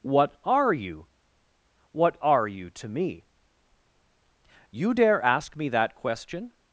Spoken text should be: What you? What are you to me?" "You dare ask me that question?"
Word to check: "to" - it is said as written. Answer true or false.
true